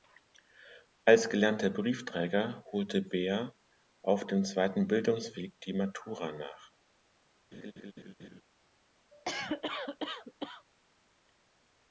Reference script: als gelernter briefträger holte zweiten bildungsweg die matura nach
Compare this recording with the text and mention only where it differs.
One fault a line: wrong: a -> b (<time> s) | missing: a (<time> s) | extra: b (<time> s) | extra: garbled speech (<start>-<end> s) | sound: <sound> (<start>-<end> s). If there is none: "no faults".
extra: beer auf dem (3.0 s)
sound: laugh (7.5-8.4 s)
sound: cough (9.1-10.6 s)